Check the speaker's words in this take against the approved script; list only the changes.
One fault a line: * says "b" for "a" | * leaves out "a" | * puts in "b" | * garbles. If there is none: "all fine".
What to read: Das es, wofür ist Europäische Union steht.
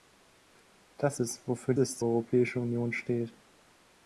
all fine